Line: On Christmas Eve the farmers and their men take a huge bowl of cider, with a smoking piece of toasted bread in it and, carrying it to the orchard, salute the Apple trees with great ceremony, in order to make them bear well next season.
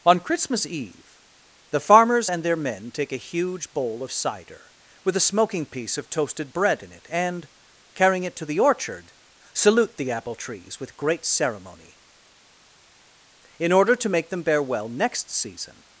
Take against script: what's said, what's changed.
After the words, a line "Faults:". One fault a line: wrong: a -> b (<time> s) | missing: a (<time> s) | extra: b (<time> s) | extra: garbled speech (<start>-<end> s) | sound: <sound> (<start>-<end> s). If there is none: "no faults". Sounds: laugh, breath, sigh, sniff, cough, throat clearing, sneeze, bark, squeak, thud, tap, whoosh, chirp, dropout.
On Christmas Eve the farmers and their men take a huge bowl of cider, with a smoking piece of toasted bread in it and, carrying it to the orchard, salute the Apple trees with great ceremony, in order to make them bear well next season.
Faults:
no faults